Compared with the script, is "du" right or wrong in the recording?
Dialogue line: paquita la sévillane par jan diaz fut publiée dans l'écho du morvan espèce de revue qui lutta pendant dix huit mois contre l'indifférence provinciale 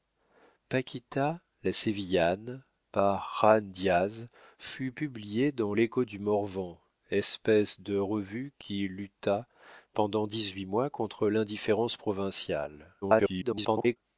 right